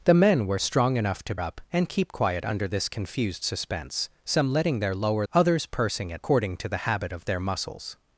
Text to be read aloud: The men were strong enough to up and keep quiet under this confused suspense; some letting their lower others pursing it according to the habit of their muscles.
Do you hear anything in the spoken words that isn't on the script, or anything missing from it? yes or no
no